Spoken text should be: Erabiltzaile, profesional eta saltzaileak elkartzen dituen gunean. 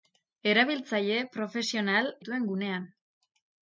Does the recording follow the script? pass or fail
fail